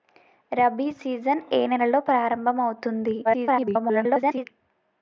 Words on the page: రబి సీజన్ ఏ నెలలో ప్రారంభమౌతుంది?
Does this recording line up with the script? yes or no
no